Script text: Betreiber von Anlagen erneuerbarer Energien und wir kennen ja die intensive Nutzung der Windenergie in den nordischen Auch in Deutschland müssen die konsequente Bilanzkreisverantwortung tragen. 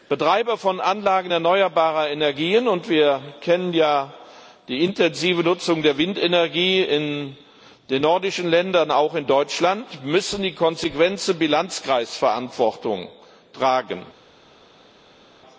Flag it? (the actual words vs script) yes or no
yes